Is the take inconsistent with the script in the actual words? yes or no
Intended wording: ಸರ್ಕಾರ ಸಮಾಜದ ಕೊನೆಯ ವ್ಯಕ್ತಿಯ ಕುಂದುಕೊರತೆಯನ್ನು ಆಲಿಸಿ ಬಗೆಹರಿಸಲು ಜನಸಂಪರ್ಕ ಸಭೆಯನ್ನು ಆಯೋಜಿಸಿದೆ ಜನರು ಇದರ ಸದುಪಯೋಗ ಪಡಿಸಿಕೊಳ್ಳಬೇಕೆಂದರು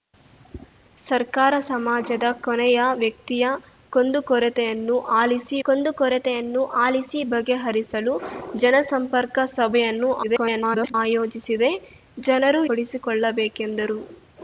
yes